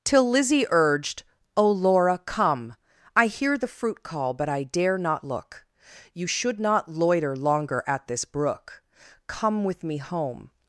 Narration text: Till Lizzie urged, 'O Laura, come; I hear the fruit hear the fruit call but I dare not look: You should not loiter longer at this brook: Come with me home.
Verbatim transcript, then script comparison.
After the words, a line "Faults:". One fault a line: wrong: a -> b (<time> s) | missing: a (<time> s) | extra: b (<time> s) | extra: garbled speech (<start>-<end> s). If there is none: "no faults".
Till Lizzie urged, 'O Laura, come; I hear the fruit call but I dare not look: You should not loiter longer at this brook: Come with me home.
Faults:
missing: hear the fruit (4.0 s)